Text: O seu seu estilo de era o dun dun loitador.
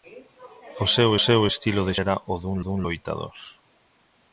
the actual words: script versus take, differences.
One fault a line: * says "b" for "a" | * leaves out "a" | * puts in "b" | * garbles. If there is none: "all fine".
all fine